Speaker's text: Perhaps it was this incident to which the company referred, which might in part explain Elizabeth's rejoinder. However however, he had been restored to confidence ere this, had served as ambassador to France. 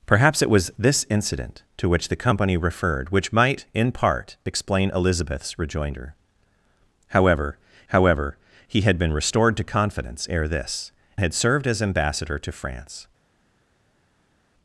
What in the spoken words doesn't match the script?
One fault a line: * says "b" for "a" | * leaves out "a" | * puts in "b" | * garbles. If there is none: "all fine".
all fine